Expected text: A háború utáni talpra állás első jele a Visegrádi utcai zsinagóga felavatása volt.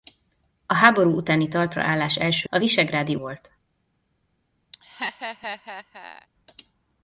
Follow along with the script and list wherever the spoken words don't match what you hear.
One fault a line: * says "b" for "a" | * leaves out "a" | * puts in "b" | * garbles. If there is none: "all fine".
* leaves out "jele"
* leaves out "utcai zsinagóga felavatása"